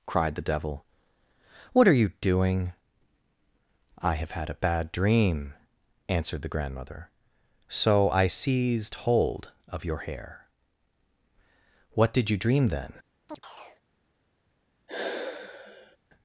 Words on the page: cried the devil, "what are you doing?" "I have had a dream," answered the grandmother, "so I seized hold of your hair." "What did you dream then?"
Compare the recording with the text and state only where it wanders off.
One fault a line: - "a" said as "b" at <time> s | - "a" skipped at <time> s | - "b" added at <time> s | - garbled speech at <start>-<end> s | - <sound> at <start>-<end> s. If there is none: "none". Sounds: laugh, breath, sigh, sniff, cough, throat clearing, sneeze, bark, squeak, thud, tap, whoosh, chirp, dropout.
- "bad" added at 4.6 s
- chirp at 13.3-13.8 s
- sigh at 14.9-16.0 s